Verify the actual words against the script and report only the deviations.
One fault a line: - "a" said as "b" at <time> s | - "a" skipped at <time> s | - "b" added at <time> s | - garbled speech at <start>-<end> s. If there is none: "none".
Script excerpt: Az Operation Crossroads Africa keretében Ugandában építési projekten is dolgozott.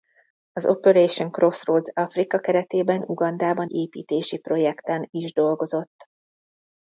none